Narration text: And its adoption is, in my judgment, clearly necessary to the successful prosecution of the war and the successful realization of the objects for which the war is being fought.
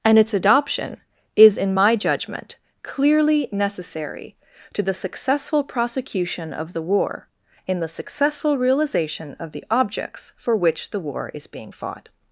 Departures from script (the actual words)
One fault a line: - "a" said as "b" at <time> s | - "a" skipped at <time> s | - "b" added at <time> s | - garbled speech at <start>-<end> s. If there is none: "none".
- "and" said as "in" at 7.7 s